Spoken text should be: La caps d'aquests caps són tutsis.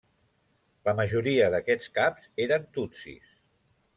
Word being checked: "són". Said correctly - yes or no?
no